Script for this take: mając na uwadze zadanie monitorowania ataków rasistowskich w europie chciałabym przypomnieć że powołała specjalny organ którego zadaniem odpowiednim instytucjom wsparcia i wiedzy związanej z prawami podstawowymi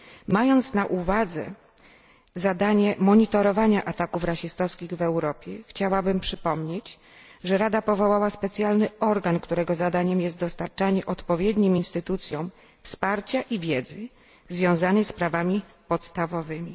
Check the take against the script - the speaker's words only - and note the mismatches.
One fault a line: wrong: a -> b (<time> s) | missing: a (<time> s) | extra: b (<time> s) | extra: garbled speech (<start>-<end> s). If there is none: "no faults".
extra: rada (7.6 s)
extra: jest dostarczanie (10.2 s)